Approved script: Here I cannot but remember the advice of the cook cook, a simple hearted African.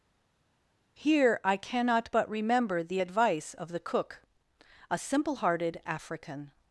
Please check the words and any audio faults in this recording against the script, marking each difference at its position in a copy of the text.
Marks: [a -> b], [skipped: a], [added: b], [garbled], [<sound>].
Here I cannot but remember the advice of the cook [skipped: cook,] a simple hearted African.